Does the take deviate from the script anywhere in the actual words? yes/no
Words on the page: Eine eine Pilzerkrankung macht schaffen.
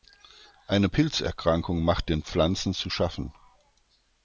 yes